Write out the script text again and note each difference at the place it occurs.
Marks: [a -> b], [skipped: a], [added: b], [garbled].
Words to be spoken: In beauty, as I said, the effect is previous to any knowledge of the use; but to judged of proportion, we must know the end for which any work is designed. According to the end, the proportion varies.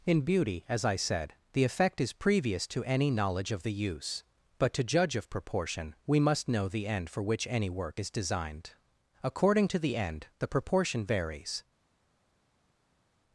In beauty, as I said, the effect is previous to any knowledge of the use; but to [judged -> judge] of proportion, we must know the end for which any work is designed. According to the end, the proportion varies.